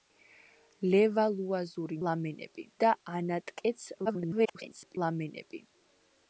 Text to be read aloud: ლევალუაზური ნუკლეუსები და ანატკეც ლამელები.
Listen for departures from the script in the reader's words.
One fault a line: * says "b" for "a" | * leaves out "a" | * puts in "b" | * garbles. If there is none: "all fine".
* says "ლამელები" for "ნუკლეუსები"
* garbles